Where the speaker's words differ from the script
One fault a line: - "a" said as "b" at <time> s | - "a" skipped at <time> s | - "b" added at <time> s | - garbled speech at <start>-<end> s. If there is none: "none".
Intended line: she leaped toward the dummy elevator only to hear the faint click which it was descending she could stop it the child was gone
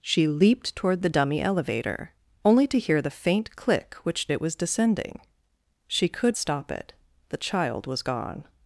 none